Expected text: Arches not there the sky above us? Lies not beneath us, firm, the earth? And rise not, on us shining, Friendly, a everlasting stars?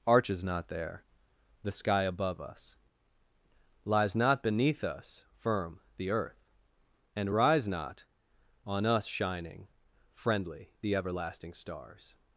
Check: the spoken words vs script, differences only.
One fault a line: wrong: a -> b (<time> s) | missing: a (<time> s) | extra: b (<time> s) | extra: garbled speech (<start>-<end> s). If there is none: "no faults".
wrong: a -> the (10.8 s)